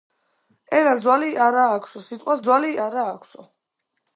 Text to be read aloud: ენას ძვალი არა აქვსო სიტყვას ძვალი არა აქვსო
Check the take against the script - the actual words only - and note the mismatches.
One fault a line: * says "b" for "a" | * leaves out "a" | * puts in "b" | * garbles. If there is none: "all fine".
all fine